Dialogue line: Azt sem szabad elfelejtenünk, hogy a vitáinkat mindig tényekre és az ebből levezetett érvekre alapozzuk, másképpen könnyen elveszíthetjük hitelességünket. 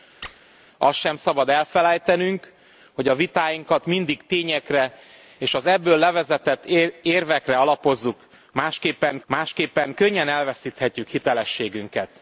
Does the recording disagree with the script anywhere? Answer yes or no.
yes